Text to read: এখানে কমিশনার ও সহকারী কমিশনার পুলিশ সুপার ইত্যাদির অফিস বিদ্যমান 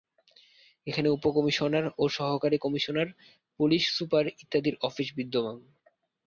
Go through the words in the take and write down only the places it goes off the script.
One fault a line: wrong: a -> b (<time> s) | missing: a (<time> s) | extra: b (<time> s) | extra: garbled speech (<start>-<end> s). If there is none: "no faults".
extra: উপ (1.1 s)